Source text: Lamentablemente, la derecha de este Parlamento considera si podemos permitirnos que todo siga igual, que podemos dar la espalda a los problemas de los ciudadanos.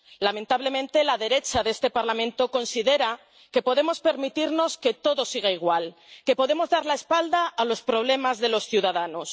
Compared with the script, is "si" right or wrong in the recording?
wrong